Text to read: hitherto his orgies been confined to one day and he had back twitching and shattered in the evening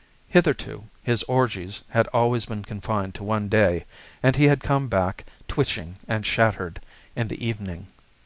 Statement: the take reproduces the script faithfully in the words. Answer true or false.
false